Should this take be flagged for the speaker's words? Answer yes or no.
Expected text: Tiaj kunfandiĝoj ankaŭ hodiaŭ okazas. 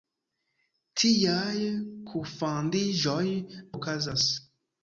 yes